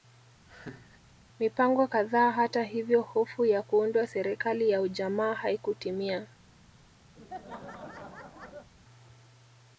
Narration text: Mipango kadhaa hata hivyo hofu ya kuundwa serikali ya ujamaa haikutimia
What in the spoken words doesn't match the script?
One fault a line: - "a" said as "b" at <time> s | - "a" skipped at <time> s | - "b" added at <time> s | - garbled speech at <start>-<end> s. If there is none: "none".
none